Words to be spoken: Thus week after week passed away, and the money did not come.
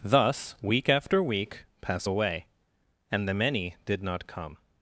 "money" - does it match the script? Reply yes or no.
no